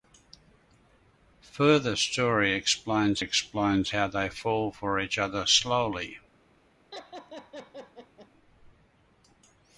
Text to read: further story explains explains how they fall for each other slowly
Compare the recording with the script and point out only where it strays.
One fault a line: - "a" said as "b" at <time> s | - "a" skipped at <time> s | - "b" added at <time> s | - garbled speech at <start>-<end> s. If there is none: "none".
none